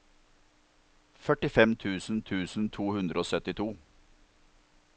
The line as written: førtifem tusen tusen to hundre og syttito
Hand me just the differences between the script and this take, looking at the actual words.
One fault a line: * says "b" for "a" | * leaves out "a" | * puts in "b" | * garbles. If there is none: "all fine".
all fine